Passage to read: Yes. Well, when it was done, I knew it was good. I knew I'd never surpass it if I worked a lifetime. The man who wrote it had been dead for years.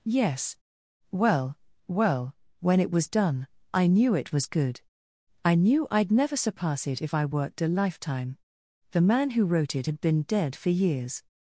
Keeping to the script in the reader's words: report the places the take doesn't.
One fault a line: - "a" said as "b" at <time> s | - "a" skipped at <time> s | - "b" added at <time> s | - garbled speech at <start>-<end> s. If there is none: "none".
- "well" added at 1.9 s